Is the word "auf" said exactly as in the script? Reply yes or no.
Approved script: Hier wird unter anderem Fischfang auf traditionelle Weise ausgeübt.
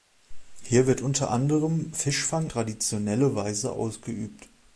no